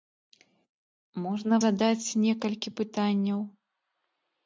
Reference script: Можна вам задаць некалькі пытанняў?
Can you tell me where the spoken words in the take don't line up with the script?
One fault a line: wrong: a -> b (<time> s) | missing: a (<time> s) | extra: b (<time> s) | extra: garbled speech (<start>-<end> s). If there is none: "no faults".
missing: вам (1.6 s)